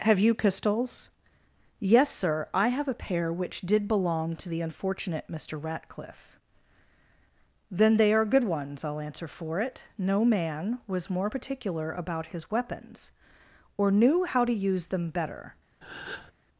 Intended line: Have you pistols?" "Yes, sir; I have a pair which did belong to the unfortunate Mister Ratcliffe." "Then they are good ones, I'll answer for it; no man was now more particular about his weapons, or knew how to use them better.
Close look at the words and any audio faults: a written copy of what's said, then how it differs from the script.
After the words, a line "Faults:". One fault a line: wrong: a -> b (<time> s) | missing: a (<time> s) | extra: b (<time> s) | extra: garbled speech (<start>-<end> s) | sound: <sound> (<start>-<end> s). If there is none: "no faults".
Have you pistols?" "Yes, sir; I have a pair which did belong to the unfortunate Mister Ratcliffe." "Then they are good ones, I'll answer for it; no man was more particular about his weapons, or knew how to use them better.
Faults:
missing: now (11.1 s)
sound: breath (15.8-16.3 s)